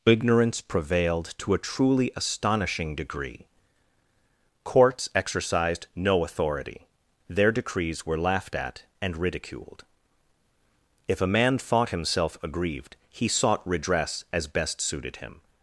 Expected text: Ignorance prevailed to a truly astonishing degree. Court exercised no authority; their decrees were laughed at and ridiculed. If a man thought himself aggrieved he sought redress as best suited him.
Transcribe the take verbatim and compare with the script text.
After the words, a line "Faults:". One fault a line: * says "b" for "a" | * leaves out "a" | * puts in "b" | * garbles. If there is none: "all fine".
Ignorance prevailed to a truly astonishing degree. Courts exercised no authority; their decrees were laughed at and ridiculed. If a man thought himself aggrieved he sought redress as best suited him.
Faults:
* says "Courts" for "Court"